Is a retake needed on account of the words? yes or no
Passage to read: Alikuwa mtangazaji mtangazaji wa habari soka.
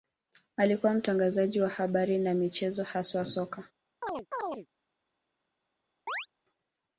yes